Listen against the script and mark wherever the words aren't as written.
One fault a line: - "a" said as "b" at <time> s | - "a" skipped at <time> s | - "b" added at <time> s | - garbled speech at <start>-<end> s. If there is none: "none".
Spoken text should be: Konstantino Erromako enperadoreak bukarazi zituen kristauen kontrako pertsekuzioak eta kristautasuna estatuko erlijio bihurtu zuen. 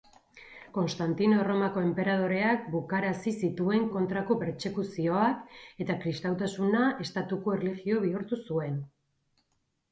- "kristauen" skipped at 3.9 s